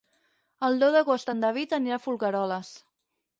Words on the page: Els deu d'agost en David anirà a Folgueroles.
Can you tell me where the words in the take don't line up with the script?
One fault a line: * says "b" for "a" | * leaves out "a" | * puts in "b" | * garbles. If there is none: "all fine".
* says "El" for "Els"